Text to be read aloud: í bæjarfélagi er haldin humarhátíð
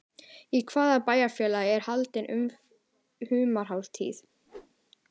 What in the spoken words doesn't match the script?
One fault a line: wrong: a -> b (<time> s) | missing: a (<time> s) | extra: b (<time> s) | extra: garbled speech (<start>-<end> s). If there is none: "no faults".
extra: hvaða (0.7 s)